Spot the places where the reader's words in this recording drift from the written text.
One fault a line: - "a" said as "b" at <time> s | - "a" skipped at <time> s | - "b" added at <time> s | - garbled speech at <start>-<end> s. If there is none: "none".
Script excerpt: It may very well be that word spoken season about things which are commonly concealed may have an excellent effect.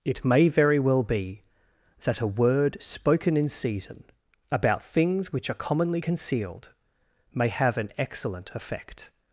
- "a" added at 2.2 s
- "in" added at 3.4 s